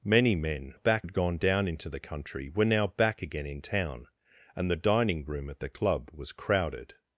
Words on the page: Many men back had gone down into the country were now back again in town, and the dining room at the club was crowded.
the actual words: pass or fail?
pass